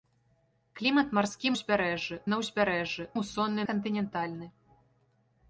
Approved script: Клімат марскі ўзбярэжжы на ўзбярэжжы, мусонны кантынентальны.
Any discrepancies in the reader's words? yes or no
no